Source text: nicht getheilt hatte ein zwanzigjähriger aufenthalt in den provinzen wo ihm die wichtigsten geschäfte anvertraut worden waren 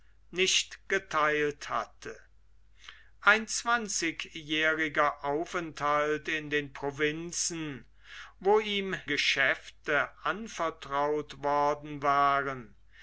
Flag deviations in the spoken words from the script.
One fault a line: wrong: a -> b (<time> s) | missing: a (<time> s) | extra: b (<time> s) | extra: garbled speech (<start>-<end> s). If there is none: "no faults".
missing: die wichtigsten (8.9 s)